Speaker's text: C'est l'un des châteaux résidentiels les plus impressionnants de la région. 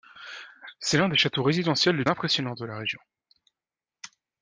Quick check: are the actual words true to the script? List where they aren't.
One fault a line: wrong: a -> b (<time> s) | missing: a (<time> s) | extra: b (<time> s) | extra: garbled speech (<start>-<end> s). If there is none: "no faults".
missing: plus (2.1 s)